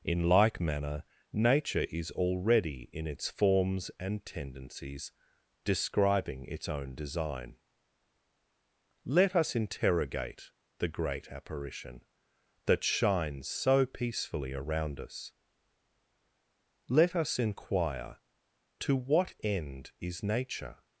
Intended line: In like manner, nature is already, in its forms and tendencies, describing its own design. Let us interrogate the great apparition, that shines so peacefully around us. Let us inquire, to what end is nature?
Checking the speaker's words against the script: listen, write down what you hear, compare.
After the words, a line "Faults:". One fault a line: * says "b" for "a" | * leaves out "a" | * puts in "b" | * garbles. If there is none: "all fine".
In like manner, nature is already, in its forms and tendencies, describing its own design. Let us interrogate the great apparition, that shines so peacefully around us. Let us inquire, to what end is nature?
Faults:
all fine